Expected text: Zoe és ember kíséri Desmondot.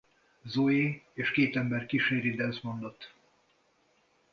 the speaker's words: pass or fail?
fail